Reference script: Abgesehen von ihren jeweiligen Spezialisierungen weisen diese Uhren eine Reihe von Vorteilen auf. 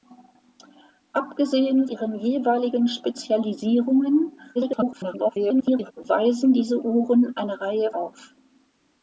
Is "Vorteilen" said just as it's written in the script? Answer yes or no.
no